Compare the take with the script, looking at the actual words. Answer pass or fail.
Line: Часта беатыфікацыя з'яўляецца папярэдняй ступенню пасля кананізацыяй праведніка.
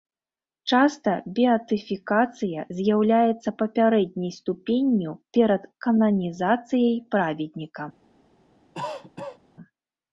fail